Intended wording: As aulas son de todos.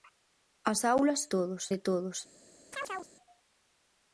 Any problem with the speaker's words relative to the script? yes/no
yes